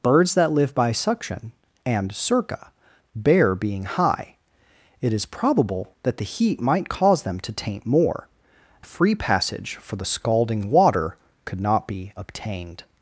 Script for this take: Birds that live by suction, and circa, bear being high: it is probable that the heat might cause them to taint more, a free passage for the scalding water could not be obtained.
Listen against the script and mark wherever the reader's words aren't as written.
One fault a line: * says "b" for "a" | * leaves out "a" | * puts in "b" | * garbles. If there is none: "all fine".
all fine